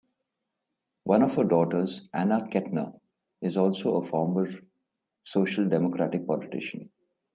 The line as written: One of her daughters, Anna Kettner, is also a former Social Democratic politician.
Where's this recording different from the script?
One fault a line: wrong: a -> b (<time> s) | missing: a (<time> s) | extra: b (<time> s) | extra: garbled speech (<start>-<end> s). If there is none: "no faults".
no faults